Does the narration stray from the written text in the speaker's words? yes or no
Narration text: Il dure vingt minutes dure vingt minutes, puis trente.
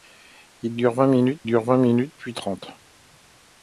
no